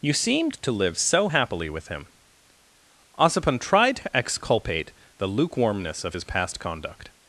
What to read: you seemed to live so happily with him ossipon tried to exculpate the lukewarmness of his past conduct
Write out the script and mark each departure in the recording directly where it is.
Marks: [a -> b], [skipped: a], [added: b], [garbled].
you seemed to live so happily with him ossipon tried to exculpate the lukewarmness of his past conduct